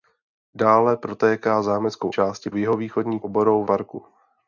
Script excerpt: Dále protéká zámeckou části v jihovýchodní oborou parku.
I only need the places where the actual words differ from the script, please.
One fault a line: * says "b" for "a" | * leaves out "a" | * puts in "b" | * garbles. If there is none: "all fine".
all fine